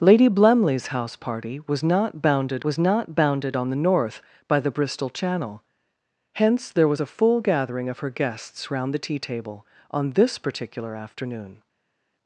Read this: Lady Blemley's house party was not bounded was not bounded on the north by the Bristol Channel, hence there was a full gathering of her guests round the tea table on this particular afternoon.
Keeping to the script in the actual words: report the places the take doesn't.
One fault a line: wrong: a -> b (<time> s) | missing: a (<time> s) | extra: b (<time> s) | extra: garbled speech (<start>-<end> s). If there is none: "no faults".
no faults